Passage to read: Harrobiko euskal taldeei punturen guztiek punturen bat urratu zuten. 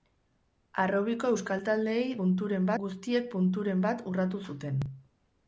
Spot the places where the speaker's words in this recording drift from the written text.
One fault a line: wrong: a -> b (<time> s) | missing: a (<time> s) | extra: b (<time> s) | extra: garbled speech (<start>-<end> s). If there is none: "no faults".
no faults